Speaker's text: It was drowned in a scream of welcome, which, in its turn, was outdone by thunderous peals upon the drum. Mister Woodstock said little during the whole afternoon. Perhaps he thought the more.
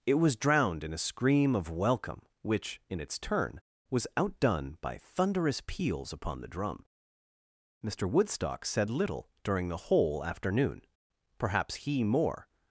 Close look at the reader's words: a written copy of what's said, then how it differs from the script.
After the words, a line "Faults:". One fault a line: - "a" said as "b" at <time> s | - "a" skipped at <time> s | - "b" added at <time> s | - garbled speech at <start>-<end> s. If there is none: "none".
It was drowned in a scream of welcome, which, in its turn, was outdone by thunderous peals upon the drum. Mister Woodstock said little during the whole afternoon. Perhaps he more.
Faults:
- "thought the" skipped at 12.0 s